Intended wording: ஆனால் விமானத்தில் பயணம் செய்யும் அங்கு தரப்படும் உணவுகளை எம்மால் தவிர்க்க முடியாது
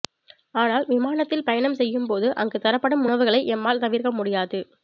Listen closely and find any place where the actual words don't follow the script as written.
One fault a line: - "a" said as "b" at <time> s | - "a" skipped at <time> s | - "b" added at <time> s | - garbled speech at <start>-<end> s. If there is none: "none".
- "போது" added at 2.1 s